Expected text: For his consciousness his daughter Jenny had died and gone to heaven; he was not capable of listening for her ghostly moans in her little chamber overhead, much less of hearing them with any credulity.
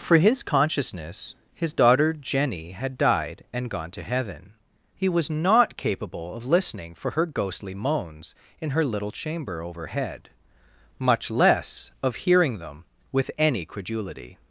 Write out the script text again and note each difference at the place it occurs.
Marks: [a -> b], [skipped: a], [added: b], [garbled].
For his consciousness his daughter Jenny had died and gone to heaven; he was not capable of listening for her ghostly moans in her little chamber overhead, much less of hearing them with any credulity.